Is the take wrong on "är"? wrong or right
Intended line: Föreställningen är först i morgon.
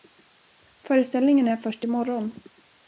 right